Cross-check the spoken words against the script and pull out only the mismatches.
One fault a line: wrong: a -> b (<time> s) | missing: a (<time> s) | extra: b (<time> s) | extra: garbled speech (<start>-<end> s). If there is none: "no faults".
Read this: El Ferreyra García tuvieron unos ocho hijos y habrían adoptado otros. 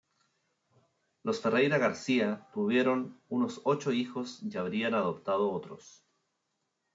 wrong: El -> Los (1.2 s)